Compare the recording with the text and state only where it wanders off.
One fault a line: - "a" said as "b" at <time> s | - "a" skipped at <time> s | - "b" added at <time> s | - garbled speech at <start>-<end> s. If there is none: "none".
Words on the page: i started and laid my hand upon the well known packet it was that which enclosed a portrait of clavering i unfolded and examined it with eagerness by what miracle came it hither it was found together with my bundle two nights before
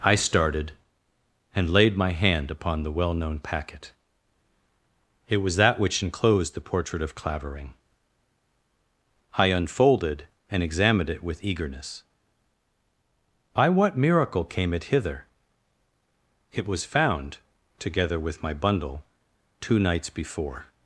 - "a" said as "the" at 6.5 s